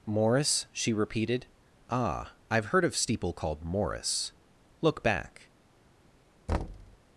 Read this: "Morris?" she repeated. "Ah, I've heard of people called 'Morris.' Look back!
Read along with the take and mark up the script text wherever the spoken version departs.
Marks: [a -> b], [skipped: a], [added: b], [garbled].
"Morris?" she repeated. "Ah, I've heard of [people -> steeple] called 'Morris.' Look back!